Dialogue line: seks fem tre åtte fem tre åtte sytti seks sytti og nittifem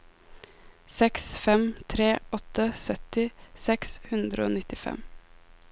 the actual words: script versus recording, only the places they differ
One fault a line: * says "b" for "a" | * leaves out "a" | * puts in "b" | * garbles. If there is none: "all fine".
* leaves out "fem tre åtte"
* says "hundre" for "sytti"